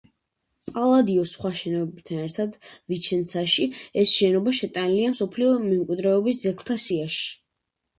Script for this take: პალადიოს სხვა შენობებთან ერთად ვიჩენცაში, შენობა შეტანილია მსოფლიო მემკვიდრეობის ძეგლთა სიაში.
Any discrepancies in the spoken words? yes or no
yes